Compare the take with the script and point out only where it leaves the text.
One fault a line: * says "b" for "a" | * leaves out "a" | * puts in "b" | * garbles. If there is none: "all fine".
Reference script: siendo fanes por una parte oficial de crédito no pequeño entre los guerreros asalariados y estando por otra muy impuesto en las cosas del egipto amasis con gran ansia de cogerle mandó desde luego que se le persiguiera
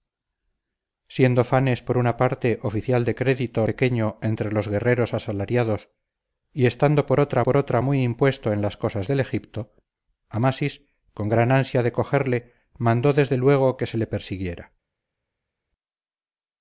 * leaves out "no"
* puts in "por otra"